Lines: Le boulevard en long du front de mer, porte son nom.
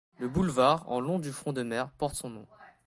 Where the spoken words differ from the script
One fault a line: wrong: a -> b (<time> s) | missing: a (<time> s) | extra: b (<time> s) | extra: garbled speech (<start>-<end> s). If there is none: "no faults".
no faults